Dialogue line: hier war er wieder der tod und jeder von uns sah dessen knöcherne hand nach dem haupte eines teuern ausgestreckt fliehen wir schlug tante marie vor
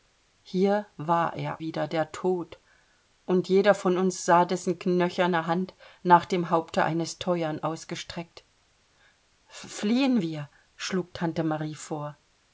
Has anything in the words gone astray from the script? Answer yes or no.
no